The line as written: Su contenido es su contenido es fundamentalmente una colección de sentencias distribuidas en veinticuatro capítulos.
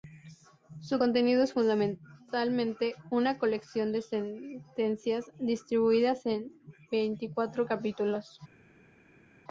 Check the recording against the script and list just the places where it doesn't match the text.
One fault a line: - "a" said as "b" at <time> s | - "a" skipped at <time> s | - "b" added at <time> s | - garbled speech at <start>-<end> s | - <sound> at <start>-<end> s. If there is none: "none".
- "su contenido es" skipped at 1.5 s